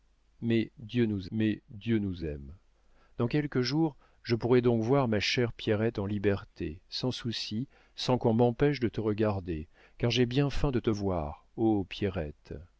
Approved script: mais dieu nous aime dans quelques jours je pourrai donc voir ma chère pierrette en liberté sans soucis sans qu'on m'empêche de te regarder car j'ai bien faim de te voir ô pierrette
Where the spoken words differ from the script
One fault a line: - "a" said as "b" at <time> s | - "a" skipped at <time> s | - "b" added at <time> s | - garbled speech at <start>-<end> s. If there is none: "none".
- "mais dieu nous" added at 1.3 s